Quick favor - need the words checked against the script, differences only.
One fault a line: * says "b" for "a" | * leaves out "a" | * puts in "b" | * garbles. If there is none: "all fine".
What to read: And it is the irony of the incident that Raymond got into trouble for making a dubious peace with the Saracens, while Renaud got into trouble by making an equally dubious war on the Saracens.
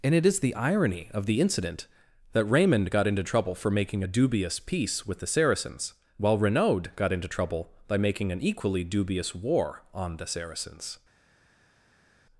all fine